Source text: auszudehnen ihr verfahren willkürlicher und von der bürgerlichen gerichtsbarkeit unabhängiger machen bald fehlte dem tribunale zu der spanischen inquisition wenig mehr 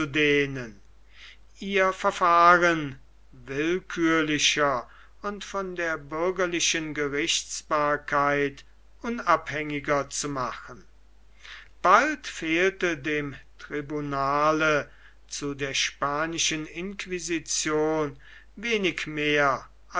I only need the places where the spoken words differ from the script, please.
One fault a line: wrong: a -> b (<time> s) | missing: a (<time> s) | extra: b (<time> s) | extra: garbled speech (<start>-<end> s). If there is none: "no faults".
extra: zu (10.1 s)